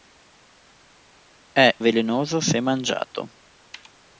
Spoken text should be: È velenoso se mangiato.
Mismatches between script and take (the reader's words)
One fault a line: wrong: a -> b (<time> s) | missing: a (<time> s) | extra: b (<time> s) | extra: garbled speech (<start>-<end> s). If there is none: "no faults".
no faults